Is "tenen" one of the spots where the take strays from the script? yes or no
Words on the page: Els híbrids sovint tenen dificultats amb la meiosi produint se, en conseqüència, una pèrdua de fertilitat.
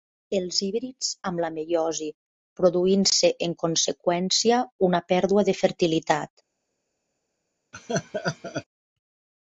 yes